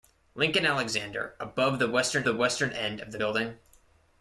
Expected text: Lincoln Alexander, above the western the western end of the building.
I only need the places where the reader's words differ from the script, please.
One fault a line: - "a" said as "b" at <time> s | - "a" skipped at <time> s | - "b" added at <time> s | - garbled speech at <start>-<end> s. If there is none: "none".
none